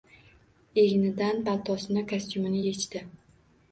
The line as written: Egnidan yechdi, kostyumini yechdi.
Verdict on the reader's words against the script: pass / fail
fail